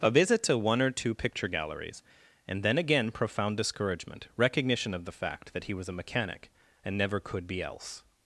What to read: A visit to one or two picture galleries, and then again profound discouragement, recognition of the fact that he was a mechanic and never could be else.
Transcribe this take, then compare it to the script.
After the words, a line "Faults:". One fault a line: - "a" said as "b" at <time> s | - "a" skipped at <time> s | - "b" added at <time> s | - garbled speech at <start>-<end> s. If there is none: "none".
A visit to one or two picture galleries, and then again profound discouragement, recognition of the fact that he was a mechanic and never could be else.
Faults:
none